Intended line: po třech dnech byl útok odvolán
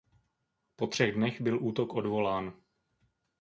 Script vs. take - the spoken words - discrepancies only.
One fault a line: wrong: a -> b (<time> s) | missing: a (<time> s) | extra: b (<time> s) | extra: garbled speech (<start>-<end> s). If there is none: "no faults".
no faults